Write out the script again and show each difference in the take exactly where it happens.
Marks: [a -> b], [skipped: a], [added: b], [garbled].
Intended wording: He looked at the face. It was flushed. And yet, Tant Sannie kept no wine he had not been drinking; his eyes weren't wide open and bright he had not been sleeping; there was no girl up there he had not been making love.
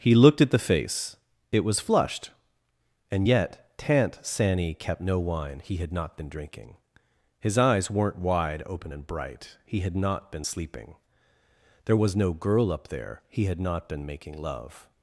He looked at the face. It was flushed. And yet, Tant Sannie kept no wine he had not been drinking; his eyes weren't wide open and bright he had not been sleeping; there was no girl up there he had not been making love.